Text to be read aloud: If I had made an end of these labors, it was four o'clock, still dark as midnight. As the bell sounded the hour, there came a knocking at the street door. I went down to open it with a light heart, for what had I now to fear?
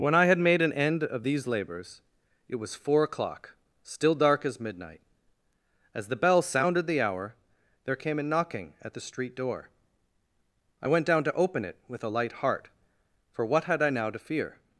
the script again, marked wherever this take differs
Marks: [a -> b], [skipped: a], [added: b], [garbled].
[If -> When] I had made an end of these labors, it was four o'clock, still dark as midnight. As the bell sounded the hour, there came a knocking at the street door. I went down to open it with a light heart, for what had I now to fear?